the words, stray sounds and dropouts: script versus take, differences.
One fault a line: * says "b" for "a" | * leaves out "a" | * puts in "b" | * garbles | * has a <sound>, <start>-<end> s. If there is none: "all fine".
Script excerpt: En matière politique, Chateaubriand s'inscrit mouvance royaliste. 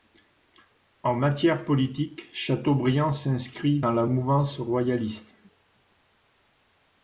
* puts in "dans la"